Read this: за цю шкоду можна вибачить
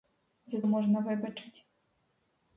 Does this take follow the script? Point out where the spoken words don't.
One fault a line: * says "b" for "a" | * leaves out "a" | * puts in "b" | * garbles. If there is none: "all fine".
* leaves out "цю шкоду"